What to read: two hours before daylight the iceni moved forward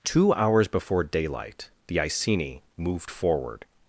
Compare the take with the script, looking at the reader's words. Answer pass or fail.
pass